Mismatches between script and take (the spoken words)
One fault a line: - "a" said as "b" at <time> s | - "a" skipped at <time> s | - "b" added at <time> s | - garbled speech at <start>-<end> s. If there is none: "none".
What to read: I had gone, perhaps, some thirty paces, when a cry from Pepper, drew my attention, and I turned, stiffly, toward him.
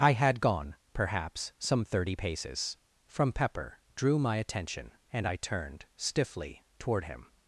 - "when a cry" skipped at 2.8 s